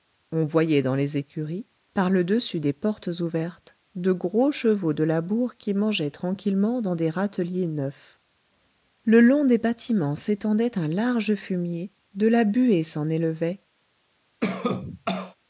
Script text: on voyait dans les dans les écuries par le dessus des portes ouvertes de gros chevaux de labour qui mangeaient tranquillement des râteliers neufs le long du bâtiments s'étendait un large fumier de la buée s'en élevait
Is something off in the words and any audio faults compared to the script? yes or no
yes